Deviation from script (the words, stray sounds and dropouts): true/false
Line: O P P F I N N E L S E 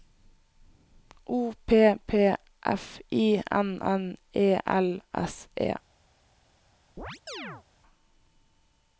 true